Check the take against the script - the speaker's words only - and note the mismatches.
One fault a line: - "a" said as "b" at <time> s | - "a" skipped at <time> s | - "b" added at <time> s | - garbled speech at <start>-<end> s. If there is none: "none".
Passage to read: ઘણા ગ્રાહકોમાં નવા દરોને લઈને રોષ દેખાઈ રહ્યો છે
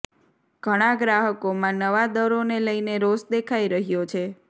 none